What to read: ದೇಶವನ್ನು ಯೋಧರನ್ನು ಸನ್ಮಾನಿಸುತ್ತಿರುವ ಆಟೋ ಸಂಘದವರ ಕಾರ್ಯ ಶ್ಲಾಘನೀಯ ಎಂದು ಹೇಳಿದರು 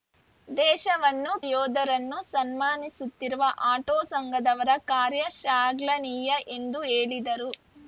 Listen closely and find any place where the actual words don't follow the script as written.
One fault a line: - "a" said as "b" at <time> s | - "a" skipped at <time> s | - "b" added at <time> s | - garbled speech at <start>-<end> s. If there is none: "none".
none